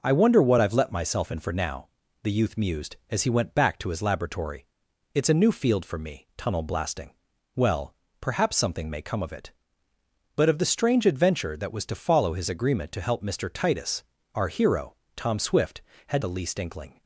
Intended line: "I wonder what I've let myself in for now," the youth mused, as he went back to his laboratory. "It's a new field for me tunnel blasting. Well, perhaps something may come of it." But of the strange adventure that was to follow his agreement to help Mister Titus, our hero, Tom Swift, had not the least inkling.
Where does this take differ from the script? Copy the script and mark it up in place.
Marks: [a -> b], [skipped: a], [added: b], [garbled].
"I wonder what I've let myself in for now," the youth mused, as he went back to his laboratory. "It's a new field for me tunnel blasting. Well, perhaps something may come of it." But of the strange adventure that was to follow his agreement to help Mister Titus, our hero, Tom Swift, had [skipped: not] the least inkling.